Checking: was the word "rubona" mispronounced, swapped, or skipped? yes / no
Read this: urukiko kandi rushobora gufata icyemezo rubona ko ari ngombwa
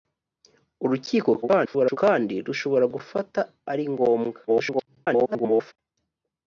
yes